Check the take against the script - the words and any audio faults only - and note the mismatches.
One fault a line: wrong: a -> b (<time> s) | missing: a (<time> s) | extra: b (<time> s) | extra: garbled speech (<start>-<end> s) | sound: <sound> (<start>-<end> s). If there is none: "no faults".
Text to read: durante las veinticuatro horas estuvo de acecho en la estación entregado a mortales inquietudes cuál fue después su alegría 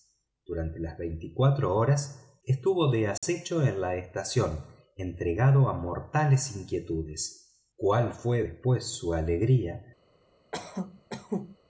sound: dropout (3.2-3.2 s)
sound: cough (10.5-11.6 s)